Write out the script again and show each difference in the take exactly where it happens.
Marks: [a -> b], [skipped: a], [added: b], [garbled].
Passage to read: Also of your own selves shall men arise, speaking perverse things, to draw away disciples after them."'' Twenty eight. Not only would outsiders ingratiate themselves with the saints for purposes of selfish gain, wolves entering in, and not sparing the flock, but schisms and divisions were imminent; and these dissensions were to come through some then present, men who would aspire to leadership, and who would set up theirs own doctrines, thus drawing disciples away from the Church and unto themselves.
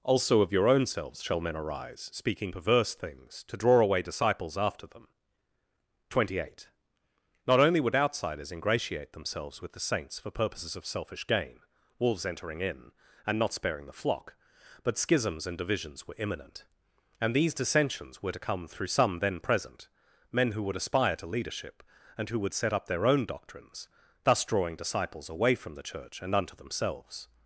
Also of your own selves shall men arise, speaking perverse things, to draw away disciples after them."'' Twenty eight. Not only would outsiders ingratiate themselves with the saints for purposes of selfish gain, wolves entering in, and not sparing the flock, but schisms and divisions were imminent; and these dissensions were to come through some then present, men who would aspire to leadership, and who would set up [theirs -> their] own doctrines, thus drawing disciples away from the Church and unto themselves.